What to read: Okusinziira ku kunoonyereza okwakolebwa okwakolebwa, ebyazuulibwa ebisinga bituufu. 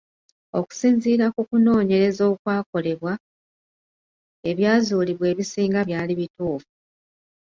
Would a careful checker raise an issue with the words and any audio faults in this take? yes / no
yes